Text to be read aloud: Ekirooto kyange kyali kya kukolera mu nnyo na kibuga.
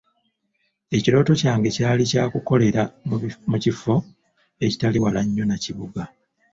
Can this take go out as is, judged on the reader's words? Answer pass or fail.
fail